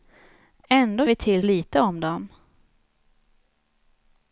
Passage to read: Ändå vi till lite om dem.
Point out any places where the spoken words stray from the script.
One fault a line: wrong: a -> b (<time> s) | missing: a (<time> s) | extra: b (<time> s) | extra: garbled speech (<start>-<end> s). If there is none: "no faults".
no faults